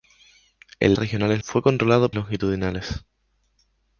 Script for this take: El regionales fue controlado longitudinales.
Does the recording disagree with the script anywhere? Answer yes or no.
no